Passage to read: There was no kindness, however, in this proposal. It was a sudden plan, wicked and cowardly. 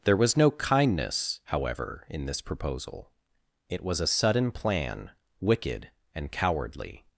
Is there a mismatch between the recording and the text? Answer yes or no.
no